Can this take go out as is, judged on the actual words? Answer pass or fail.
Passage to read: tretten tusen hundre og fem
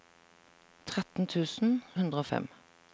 pass